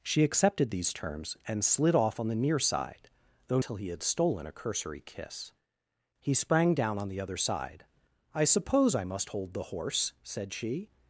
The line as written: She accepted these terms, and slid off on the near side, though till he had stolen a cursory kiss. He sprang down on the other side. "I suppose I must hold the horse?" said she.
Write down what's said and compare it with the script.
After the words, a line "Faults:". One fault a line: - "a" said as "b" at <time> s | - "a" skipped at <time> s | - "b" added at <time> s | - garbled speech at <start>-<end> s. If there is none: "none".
She accepted these terms, and slid off on the near side, though till he had stolen a cursory kiss. He sprang down on the other side. "I suppose I must hold the horse?" said she.
Faults:
none